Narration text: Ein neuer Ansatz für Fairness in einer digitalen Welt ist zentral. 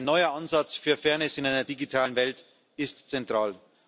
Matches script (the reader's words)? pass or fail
pass